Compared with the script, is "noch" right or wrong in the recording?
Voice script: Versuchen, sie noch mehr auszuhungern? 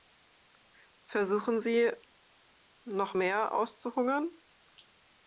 right